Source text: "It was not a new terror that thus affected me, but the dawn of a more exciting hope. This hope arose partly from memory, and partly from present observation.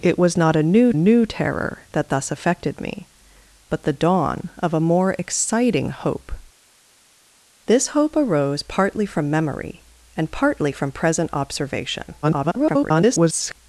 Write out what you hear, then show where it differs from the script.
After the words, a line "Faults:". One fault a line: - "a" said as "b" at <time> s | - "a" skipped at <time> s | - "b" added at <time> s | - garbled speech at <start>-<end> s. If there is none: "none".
"It was not a new new terror that thus affected me, but the dawn of a more exciting hope. This hope arose partly from memory, and partly from present observation. [garbled]
Faults:
- "new" added at 0.9 s
- garbled speech at 12.2-13.6 s